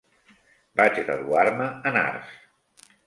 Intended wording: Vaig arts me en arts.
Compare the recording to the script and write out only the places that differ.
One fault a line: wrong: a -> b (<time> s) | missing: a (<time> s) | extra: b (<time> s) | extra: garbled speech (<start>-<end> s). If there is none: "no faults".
wrong: arts -> graduar (1.1 s)